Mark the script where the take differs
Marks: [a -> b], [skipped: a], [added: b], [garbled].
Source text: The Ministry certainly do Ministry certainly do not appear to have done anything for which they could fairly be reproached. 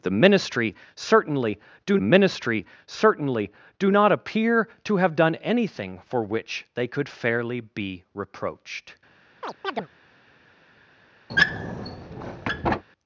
The Ministry certainly do Ministry certainly do not appear to have done anything for which they could fairly be reproached.